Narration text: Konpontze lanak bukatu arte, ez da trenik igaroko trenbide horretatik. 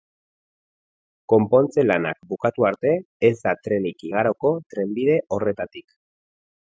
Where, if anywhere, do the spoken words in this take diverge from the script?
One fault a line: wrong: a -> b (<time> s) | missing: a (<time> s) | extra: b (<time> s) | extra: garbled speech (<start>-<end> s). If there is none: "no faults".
no faults